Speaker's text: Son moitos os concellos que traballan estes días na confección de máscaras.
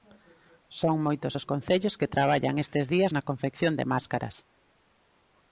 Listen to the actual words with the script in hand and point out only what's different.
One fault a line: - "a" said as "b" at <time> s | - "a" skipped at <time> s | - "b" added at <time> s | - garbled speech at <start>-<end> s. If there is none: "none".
none